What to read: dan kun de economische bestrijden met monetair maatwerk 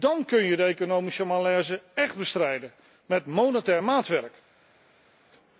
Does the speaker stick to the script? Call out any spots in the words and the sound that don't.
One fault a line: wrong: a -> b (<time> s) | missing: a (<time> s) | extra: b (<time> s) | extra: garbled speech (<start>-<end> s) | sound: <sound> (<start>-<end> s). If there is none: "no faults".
extra: je (0.4 s)
extra: malaise echt (1.2 s)